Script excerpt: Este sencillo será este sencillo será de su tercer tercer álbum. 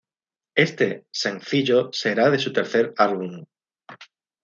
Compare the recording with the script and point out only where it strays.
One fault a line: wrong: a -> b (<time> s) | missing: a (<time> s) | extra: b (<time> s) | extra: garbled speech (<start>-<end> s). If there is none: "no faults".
missing: este sencillo será (2.3 s)
missing: tercer (2.9 s)